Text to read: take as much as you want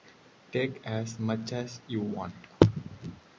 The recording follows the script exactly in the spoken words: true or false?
true